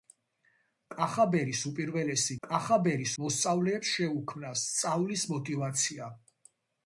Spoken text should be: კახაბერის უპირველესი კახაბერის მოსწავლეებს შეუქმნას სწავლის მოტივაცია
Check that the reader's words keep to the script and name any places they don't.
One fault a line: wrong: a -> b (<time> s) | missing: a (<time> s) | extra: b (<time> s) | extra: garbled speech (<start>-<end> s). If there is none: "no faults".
no faults